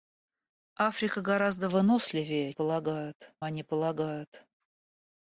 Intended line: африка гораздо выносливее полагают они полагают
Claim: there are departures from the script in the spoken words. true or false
false